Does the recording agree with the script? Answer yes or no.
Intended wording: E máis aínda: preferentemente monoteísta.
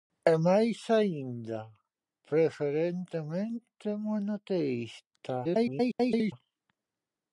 no